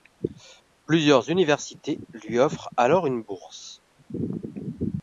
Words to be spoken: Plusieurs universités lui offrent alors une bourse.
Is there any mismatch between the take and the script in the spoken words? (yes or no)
no